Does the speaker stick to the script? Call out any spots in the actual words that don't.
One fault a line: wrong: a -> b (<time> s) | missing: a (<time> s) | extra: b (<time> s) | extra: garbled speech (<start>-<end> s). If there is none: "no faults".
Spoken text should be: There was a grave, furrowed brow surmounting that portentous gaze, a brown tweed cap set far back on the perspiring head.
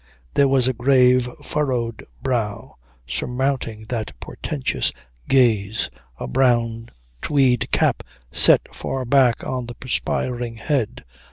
no faults